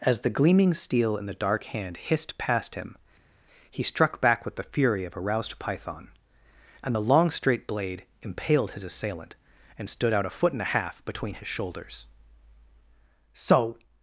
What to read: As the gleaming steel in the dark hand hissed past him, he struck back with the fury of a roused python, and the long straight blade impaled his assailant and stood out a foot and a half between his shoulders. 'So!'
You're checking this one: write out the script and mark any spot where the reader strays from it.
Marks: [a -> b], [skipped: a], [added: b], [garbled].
As the gleaming steel in the dark hand hissed past him, he struck back with the fury of a roused python, and the long straight blade impaled his assailant and stood out a foot and a half between his shoulders. 'So!'